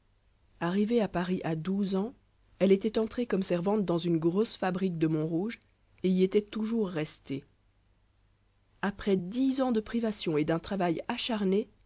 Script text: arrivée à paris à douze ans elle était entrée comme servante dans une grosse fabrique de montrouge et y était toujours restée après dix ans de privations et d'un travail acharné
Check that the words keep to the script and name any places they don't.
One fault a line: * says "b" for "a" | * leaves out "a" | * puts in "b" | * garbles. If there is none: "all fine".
all fine